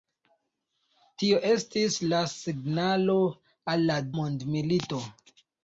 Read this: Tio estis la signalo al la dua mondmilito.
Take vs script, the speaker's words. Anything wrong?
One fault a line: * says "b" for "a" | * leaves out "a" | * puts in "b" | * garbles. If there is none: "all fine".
* leaves out "dua"